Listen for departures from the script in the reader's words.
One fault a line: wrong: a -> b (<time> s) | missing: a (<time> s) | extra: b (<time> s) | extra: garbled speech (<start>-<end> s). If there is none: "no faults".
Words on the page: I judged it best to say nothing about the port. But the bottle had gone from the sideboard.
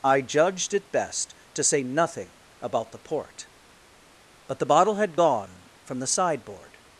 no faults